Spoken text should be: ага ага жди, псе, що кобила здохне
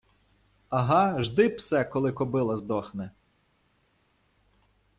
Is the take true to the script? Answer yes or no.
no